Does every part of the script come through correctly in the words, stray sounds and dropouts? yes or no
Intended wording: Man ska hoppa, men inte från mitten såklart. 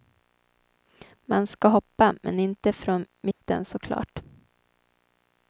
no